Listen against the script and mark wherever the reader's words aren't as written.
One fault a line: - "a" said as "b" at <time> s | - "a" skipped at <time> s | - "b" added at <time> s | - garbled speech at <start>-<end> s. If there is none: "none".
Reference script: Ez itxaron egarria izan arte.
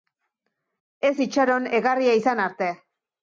none